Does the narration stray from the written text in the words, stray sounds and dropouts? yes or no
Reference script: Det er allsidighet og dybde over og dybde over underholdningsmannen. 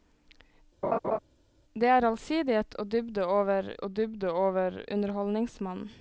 yes